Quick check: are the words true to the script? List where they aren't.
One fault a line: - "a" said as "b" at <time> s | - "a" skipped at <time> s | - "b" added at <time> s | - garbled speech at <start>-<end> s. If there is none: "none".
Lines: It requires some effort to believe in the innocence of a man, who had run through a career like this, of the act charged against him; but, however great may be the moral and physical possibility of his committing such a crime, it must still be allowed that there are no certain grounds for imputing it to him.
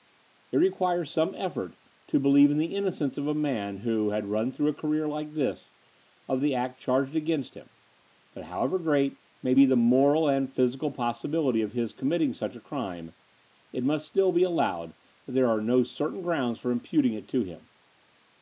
none